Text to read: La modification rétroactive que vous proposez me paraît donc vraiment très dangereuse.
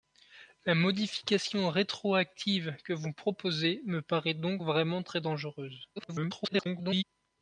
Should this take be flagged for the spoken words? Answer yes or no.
yes